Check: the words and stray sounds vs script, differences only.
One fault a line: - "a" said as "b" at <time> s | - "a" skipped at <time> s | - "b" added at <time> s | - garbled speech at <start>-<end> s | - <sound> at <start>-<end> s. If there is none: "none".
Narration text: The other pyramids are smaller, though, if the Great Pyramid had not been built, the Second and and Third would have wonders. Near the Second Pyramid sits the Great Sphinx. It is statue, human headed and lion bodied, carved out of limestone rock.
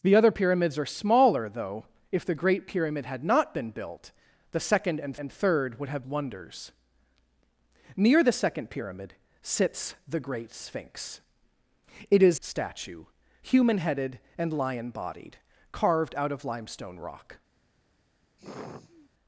- sigh at 18.4-19.1 s